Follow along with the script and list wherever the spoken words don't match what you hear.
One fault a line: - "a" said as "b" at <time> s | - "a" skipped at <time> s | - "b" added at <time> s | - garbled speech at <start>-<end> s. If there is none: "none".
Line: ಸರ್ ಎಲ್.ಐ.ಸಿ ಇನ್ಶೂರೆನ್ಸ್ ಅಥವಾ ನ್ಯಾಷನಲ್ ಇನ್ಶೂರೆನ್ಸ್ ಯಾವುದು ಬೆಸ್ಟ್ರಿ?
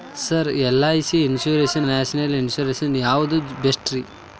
- "ಅಥವಾ" skipped at 1.8 s